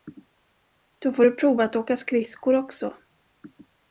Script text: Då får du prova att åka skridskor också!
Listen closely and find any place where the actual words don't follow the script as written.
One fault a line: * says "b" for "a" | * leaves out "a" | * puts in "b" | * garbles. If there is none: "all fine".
all fine